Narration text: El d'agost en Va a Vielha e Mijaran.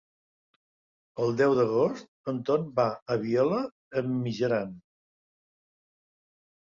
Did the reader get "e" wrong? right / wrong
right